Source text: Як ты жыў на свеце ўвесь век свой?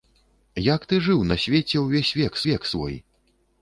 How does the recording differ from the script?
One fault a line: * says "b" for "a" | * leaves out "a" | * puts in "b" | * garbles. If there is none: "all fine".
* puts in "век"